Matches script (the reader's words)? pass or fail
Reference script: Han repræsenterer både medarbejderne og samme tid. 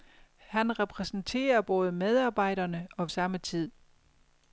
pass